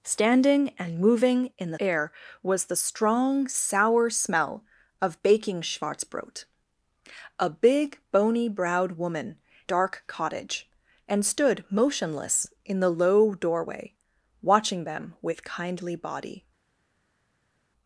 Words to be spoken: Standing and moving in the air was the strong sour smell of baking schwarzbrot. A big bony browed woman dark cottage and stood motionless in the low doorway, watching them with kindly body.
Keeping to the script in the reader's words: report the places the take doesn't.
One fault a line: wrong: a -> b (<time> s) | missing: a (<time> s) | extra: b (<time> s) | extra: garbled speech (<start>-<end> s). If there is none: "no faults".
no faults